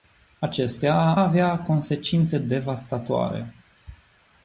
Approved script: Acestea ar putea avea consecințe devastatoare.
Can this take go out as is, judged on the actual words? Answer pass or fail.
fail